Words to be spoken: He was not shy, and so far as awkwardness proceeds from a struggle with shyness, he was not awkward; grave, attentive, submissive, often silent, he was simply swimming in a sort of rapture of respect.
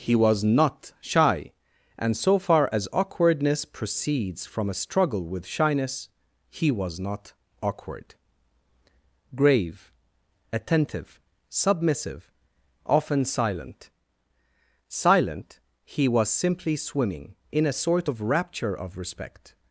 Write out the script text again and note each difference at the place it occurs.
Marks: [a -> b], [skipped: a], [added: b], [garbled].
He was not shy, and so far as awkwardness proceeds from a struggle with shyness, he was not awkward; grave, attentive, submissive, often silent, [added: silent] he was simply swimming in a sort of rapture of respect.